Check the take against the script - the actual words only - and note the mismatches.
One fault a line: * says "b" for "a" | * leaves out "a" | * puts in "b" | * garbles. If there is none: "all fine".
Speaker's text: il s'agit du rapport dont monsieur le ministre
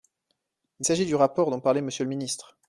* puts in "parlait"